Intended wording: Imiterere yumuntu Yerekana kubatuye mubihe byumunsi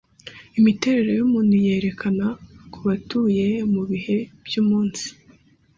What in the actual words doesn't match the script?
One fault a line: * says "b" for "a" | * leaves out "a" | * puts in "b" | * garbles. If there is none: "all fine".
all fine